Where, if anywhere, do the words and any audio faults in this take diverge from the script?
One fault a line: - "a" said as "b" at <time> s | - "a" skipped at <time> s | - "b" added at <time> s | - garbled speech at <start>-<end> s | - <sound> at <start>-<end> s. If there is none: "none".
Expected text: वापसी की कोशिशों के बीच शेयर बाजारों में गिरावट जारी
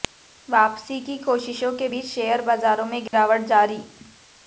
- dropout at 3.1-3.1 s